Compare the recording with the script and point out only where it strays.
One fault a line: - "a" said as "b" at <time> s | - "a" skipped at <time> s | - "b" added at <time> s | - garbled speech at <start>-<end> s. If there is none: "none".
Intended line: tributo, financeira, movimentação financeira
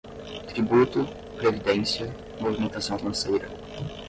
- "financeira" said as "previdência" at 1.4 s